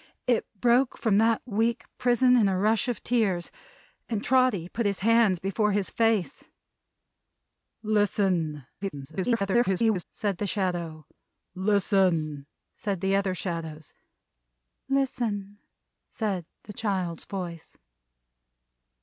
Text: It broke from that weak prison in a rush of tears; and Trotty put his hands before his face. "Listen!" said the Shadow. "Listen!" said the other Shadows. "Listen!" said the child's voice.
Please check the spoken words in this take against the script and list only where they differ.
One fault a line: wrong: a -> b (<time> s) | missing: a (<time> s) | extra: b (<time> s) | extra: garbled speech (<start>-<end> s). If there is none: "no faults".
extra: garbled speech (8.8-10.0 s)